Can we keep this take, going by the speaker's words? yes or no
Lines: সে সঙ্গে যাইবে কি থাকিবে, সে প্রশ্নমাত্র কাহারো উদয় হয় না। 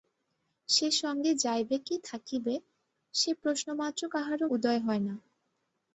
yes